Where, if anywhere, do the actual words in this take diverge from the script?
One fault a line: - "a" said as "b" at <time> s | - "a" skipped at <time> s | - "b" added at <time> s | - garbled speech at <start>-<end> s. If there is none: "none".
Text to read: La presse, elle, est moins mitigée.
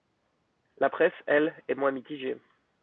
none